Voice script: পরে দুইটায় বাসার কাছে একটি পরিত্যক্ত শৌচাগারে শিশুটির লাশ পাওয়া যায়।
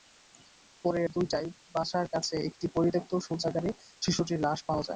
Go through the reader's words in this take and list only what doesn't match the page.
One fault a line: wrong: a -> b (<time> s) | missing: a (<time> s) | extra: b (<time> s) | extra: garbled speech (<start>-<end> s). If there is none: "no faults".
no faults